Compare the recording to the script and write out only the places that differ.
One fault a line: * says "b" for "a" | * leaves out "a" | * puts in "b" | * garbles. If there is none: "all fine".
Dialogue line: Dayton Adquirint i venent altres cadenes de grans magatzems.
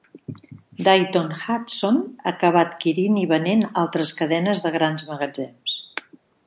* puts in "Hudson acabà"